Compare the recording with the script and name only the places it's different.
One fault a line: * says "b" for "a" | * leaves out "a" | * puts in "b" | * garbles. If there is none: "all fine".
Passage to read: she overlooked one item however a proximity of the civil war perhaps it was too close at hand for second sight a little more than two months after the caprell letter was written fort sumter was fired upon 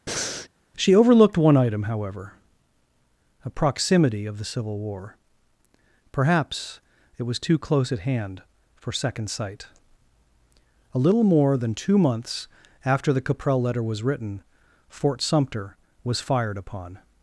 all fine